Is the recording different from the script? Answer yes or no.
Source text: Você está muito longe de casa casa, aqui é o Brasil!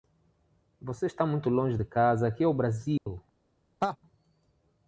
yes